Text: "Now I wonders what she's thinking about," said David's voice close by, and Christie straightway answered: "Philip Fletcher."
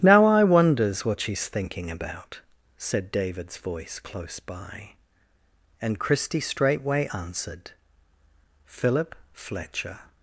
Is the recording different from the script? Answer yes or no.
no